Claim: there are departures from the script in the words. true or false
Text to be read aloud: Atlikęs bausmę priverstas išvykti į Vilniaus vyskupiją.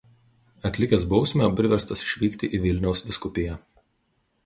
false